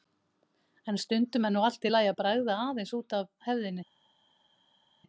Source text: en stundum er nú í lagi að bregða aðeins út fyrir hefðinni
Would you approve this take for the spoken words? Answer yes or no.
no